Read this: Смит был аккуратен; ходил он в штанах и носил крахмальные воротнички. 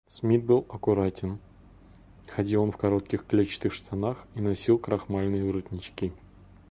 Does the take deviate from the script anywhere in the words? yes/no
yes